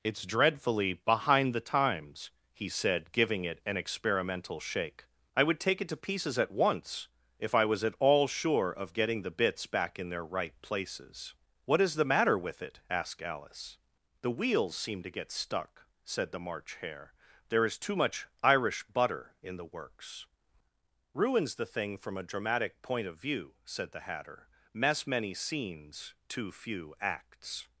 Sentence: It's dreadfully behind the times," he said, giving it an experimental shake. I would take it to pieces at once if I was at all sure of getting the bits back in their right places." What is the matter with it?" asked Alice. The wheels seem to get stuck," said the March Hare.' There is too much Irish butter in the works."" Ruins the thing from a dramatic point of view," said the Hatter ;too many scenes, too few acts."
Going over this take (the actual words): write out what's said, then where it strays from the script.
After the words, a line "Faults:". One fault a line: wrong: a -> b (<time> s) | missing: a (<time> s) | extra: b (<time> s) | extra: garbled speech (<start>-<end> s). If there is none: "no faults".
It's dreadfully behind the times," he said, giving it an experimental shake. I would take it to pieces at once if I was at all sure of getting the bits back in their right places." What is the matter with it?" asked Alice. The wheels seem to get stuck," said the March Hare.' There is too much Irish butter in the works."" Ruins the thing from a dramatic point of view," said the Hatter ;mess many scenes, too few acts."
Faults:
wrong: too -> mess (24.7 s)